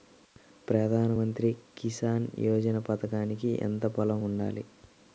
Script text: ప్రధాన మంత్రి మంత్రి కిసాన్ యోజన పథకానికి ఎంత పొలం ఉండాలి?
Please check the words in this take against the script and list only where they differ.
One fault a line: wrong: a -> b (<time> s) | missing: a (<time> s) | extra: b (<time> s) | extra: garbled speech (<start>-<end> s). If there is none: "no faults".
missing: మంత్రి (1.5 s)